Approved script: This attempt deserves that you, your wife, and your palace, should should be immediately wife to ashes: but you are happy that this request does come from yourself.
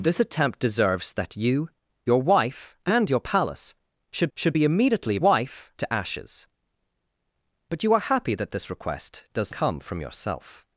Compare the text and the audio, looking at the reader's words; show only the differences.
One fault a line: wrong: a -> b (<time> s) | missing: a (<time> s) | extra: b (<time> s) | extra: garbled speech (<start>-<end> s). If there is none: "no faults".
no faults